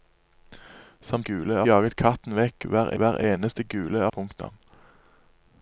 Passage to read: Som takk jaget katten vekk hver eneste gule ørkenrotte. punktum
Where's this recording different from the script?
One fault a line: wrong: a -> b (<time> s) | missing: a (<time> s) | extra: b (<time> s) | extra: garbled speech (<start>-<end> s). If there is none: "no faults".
wrong: takk -> gule (1.3 s)
extra: hver (3.0 s)
missing: ørkenrotte (4.1 s)